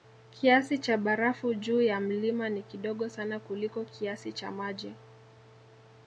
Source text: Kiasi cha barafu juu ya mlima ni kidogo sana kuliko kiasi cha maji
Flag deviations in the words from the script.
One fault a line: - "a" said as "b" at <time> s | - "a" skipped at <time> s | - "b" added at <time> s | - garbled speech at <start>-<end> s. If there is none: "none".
none